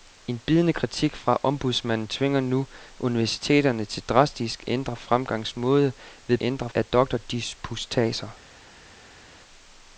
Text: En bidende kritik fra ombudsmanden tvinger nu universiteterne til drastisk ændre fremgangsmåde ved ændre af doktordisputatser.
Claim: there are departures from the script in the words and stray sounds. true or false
false